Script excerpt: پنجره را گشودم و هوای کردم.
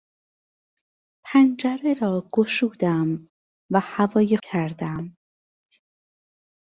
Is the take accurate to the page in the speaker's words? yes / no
yes